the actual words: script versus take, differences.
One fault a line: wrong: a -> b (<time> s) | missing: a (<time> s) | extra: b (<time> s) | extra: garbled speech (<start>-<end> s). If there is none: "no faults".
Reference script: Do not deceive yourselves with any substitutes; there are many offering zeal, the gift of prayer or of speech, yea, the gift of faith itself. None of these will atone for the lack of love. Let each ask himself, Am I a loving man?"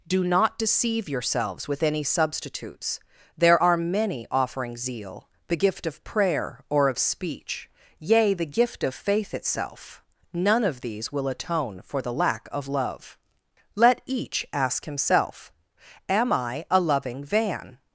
wrong: man -> van (17.2 s)